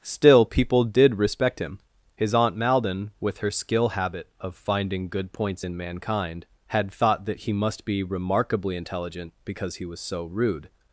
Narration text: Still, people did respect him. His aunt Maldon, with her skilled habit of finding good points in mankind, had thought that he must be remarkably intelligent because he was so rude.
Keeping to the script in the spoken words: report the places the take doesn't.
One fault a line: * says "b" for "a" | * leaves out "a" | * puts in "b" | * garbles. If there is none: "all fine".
* says "skill" for "skilled"